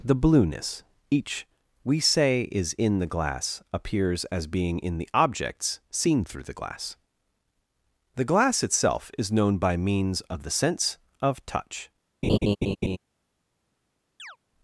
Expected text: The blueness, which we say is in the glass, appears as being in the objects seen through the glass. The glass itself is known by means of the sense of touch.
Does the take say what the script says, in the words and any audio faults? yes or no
no